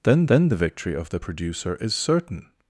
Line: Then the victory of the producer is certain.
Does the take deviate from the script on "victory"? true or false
false